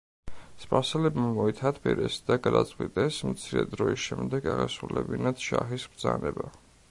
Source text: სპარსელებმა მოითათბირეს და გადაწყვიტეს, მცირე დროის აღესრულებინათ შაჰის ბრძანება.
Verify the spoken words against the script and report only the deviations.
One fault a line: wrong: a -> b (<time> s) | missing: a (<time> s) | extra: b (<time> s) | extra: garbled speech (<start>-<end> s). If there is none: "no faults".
extra: შემდეგ (4.1 s)